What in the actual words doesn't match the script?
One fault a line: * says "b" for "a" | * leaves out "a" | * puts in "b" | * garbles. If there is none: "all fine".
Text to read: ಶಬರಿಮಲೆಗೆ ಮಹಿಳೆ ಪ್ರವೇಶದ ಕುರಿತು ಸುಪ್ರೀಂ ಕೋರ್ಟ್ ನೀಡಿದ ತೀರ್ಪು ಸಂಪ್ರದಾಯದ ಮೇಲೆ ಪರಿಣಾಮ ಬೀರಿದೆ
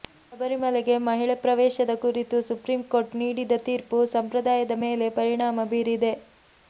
all fine